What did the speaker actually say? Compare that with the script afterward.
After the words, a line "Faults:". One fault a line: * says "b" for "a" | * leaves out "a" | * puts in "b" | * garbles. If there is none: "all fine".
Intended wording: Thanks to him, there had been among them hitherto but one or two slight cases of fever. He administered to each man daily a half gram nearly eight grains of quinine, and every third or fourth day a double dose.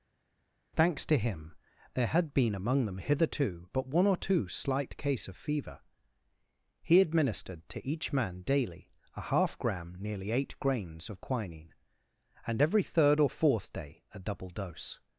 Thanks to him, there had been among them hitherto but one or two slight case of fever. He administered to each man daily a half gram nearly eight grains of quinine, and every third or fourth day a double dose.
Faults:
* says "case" for "cases"